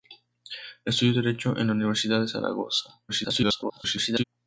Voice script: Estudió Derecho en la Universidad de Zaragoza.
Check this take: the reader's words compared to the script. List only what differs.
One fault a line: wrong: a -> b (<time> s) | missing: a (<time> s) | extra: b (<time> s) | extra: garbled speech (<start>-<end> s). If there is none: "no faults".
extra: garbled speech (3.1-4.2 s)